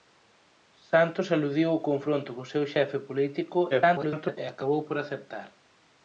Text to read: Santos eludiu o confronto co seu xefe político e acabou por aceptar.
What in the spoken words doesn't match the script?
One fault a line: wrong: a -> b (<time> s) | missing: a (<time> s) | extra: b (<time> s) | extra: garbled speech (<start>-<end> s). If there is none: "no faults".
extra: garbled speech (3.7-4.4 s)